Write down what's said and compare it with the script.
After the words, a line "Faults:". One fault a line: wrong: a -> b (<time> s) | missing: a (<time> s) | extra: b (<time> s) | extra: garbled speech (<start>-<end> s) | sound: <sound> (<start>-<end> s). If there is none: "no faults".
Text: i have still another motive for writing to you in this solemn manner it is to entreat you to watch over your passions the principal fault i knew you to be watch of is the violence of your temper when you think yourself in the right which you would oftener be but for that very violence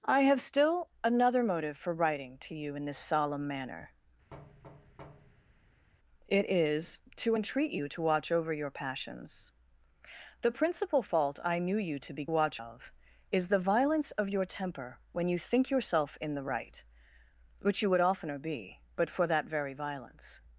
i have still another motive for writing to you in this solemn manner it is to entreat you to watch over your passions the principal fault i knew you to be watch of is the violence of your temper when you think yourself in the right which you would oftener be but for that very violence
Faults:
sound: thud (4.3-5.9 s)